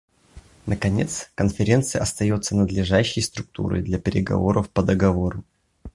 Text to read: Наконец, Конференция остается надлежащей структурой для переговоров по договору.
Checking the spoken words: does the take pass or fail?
pass